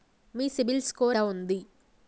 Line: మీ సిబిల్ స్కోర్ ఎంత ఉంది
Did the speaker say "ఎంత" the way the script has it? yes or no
no